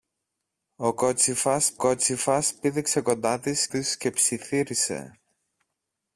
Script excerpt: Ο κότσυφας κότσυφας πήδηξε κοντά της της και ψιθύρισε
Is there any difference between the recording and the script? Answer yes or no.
no